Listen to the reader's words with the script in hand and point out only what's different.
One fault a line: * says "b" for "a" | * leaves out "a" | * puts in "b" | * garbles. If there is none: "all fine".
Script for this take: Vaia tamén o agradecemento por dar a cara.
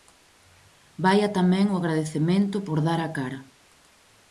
all fine